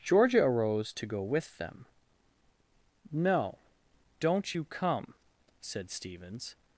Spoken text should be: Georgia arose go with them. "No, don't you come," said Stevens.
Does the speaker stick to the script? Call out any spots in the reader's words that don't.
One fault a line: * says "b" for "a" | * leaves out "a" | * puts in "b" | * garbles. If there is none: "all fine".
* puts in "to"